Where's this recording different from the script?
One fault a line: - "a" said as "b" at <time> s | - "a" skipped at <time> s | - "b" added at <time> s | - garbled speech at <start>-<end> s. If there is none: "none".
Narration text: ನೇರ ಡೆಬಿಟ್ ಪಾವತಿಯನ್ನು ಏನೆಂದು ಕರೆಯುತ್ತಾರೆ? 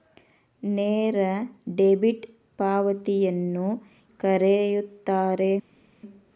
- "ಏನೆಂದು" skipped at 3.7 s